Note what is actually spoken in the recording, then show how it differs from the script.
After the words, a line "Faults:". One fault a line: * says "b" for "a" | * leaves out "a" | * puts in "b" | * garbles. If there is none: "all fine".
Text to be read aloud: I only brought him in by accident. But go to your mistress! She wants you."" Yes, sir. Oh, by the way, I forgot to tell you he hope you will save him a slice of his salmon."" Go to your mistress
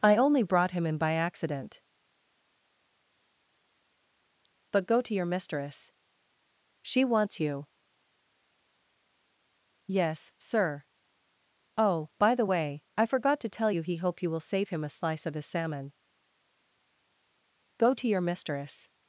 I only brought him in by accident. But go to your mistress! She wants you."" Yes, sir. Oh, by the way, I forgot to tell you he hope you will save him a slice of his salmon."" Go to your mistress
Faults:
all fine